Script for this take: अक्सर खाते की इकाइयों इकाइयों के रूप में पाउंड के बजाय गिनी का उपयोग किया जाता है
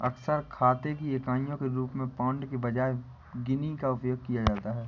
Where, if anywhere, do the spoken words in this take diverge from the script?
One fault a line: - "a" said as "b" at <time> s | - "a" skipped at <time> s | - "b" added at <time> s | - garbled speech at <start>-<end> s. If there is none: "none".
- "इकाइयों" skipped at 1.6 s